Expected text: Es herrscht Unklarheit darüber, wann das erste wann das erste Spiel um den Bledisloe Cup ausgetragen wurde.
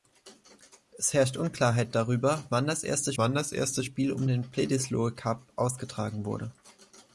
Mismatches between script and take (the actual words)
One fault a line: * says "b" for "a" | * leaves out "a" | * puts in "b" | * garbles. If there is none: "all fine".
all fine